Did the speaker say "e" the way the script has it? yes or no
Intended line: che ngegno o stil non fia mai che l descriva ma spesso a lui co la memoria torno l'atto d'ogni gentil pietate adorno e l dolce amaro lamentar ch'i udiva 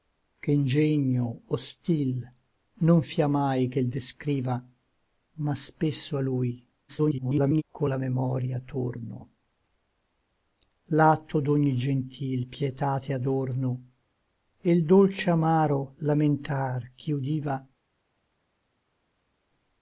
yes